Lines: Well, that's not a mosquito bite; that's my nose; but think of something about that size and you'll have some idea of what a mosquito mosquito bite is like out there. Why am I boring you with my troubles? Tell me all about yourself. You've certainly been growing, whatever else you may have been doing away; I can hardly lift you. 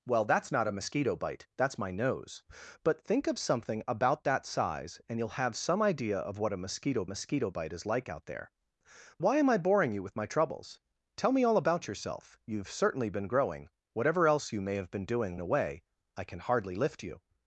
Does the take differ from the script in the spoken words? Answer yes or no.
no